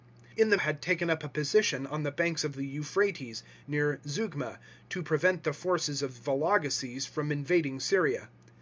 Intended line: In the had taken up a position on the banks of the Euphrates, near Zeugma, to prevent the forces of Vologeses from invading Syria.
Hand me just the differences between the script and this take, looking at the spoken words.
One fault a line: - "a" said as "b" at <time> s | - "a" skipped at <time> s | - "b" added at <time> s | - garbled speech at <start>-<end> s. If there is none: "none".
none